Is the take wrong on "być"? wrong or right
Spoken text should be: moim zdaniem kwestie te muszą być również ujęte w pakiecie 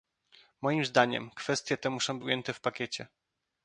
wrong